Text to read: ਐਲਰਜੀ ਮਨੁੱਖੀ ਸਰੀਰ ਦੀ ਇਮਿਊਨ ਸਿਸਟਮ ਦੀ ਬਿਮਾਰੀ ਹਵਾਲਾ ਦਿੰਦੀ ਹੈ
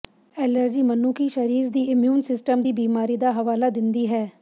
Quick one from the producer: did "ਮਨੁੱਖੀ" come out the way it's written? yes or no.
yes